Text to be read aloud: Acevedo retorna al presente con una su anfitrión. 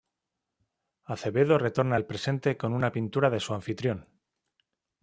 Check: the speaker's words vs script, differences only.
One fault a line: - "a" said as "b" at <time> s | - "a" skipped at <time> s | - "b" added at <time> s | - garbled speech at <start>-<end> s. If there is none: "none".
- "pintura de" added at 2.9 s